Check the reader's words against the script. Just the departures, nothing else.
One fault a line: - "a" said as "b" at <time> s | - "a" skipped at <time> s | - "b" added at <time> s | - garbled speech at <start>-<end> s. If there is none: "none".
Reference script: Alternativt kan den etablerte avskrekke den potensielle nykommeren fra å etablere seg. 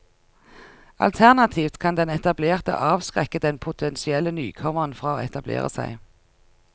none